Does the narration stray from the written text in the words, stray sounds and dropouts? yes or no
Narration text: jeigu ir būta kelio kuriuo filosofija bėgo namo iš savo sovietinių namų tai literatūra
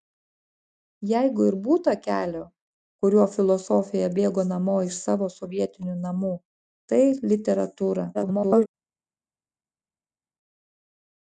yes